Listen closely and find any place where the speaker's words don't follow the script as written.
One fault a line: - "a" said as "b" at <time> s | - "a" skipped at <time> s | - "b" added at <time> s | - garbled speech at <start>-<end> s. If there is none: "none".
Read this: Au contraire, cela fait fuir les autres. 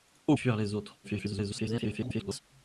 - "contraire cela fait" skipped at 0.3 s
- garbled speech at 1.0-2.4 s